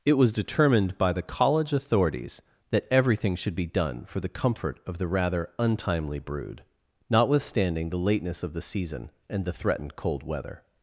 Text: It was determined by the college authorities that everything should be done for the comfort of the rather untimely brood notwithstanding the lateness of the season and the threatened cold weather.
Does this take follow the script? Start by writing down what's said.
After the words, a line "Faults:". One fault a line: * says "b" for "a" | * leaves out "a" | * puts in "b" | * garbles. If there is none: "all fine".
It was determined by the college authorities that everything should be done for the comfort of the rather untimely brood notwithstanding the lateness of the season and the threatened cold weather.
Faults:
all fine